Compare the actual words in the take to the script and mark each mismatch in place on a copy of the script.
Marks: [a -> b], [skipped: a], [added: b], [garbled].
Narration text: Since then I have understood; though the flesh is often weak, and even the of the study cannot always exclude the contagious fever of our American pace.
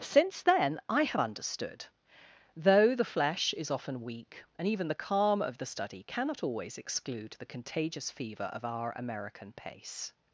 Since then I have understood; though the flesh is often weak, and even the [added: calm] of the study cannot always exclude the contagious fever of our American pace.